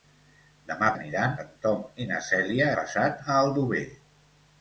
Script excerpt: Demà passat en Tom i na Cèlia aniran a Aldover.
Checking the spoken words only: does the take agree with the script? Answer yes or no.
no